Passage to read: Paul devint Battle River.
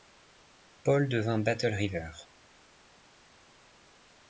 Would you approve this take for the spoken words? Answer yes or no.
yes